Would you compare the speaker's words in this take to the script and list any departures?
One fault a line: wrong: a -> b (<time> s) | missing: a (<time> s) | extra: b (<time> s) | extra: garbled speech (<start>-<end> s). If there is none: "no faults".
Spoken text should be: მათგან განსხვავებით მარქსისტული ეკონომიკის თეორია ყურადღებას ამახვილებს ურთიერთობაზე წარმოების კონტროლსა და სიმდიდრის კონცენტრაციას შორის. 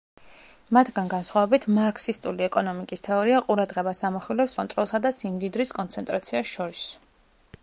missing: ურთიერთობაზე წარმოების (4.5 s)